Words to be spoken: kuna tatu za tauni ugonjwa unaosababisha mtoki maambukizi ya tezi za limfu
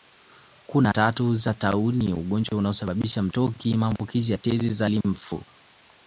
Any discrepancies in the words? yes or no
no